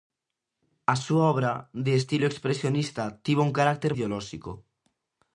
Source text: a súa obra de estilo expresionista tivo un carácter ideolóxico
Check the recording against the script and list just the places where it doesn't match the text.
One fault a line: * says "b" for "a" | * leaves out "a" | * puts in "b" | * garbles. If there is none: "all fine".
all fine